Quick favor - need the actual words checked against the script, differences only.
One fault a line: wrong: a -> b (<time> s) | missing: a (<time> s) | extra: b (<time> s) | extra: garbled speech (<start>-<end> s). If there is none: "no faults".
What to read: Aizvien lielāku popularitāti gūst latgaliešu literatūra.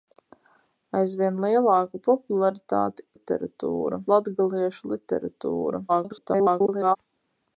wrong: gūst -> literatūra (3.1 s)
extra: garbled speech (5.9-7.0 s)